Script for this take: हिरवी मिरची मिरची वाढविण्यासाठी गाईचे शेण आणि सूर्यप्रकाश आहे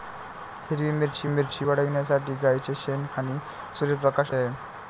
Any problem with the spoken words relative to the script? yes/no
no